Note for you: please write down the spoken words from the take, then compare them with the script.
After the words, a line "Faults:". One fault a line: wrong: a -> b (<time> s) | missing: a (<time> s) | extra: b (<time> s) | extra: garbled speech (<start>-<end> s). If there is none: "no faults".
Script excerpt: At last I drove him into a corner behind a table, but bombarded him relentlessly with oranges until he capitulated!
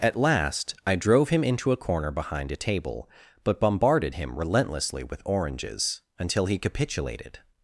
At last I drove him into a corner behind a table, but bombarded him relentlessly with oranges until he capitulated!
Faults:
no faults